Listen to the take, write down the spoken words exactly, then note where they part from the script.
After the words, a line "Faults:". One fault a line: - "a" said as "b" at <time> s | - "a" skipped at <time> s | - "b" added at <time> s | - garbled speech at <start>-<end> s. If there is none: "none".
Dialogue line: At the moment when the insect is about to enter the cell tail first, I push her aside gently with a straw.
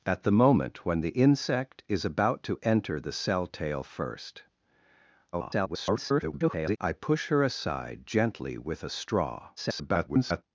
At the moment when the insect is about to enter the cell tail first, [garbled] I push her aside gently with a straw. [garbled]
Faults:
- garbled speech at 5.3-6.8 s
- garbled speech at 9.6-10.4 s